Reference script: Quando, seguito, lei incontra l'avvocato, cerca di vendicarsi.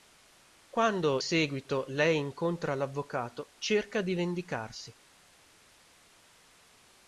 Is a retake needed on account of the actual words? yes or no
no